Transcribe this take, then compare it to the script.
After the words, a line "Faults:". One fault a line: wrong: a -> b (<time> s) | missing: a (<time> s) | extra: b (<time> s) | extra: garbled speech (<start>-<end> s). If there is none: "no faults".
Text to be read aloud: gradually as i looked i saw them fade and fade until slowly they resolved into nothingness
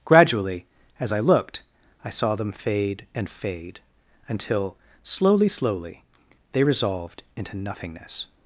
gradually as i looked i saw them fade and fade until slowly slowly they resolved into nothingness
Faults:
extra: slowly (5.5 s)